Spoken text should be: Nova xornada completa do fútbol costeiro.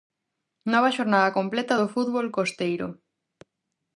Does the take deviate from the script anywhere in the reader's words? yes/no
no